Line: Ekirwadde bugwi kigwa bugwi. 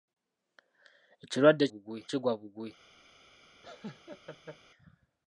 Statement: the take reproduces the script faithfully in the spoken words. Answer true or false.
true